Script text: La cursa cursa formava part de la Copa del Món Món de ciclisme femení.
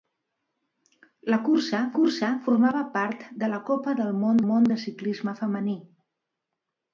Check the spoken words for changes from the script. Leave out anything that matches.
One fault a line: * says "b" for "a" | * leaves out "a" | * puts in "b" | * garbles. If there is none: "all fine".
all fine